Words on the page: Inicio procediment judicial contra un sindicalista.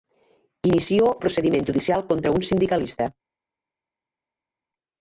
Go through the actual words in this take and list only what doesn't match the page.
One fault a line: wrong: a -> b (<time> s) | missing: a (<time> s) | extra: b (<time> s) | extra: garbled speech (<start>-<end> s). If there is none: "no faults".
no faults